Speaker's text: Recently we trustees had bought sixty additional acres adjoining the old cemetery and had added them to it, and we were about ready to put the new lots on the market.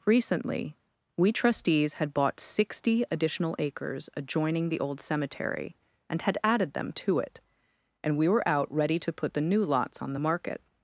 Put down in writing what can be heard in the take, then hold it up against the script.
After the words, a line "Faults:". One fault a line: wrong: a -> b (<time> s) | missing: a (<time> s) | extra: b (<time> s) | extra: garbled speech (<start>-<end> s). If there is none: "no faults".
Recently we trustees had bought sixty additional acres adjoining the old cemetery and had added them to it, and we were out ready to put the new lots on the market.
Faults:
wrong: about -> out (8.5 s)